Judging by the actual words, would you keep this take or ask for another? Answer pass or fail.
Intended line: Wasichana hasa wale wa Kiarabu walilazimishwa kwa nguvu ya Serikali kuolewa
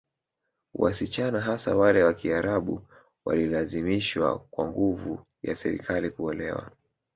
pass